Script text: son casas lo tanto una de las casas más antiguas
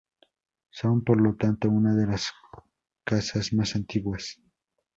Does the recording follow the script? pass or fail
fail